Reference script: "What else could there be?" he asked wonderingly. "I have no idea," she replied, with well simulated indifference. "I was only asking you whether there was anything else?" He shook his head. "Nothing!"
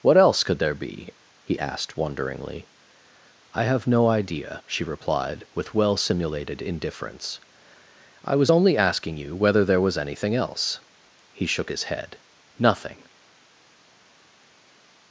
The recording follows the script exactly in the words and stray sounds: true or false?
true